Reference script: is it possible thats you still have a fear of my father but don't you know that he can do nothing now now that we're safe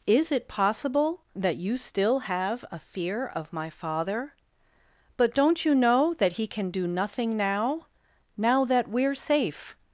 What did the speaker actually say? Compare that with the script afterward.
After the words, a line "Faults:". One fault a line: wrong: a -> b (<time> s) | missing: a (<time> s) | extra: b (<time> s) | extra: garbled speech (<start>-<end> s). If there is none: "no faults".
is it possible that you still have a fear of my father but don't you know that he can do nothing now now that we're safe
Faults:
wrong: thats -> that (1.4 s)